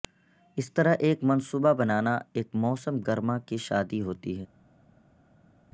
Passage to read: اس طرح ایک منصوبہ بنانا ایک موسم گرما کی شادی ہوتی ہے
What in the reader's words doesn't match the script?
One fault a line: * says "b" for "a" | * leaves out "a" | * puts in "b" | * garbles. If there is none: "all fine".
all fine